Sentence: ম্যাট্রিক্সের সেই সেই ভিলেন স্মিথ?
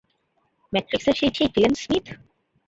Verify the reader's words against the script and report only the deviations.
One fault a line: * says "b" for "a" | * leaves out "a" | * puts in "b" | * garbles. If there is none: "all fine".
all fine